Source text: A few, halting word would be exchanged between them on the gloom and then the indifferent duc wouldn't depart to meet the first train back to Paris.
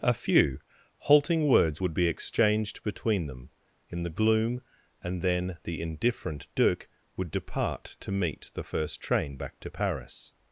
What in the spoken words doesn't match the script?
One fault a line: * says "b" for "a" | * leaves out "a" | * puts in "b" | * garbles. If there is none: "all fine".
* says "words" for "word"
* says "in" for "on"
* says "would" for "wouldn't"